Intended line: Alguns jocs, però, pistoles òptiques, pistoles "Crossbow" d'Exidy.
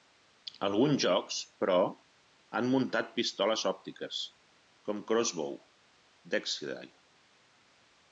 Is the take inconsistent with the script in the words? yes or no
yes